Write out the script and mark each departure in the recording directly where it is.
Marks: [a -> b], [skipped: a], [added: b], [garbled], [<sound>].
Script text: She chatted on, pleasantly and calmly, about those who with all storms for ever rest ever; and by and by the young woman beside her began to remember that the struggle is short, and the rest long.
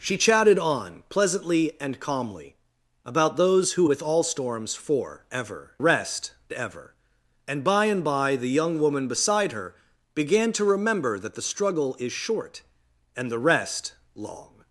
She chatted on, pleasantly and calmly, about those who with all storms for ever rest ever; and by and by the young woman beside her began to remember that the struggle is short, and the rest long.